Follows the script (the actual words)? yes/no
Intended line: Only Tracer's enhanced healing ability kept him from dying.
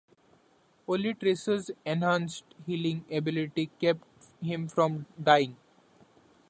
yes